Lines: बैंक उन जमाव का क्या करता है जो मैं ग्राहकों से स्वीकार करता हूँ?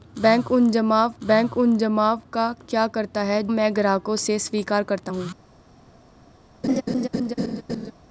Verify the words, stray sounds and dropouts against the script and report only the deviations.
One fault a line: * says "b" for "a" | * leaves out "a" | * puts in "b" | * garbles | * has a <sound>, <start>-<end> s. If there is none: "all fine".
* puts in "बैंक उन जमाव"
* leaves out "जो"
* has a laugh, 6.6-7.9 s